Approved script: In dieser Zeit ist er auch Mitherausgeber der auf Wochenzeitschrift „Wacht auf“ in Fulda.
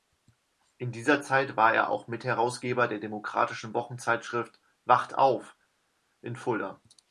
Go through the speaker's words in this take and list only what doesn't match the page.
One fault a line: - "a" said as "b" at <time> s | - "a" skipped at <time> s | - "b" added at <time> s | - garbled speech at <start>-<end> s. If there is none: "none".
- "ist" said as "war" at 1.6 s
- "auf" said as "demokratischen" at 3.0 s